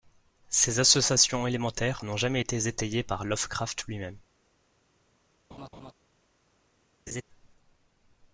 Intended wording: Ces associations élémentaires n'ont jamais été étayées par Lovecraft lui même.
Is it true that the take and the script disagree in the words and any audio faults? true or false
true